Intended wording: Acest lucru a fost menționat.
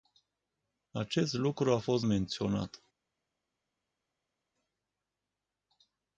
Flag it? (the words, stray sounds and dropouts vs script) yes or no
no